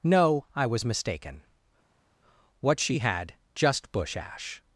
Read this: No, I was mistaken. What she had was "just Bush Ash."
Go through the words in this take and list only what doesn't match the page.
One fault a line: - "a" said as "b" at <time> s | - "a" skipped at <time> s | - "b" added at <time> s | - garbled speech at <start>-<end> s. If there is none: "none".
- "was" skipped at 3.3 s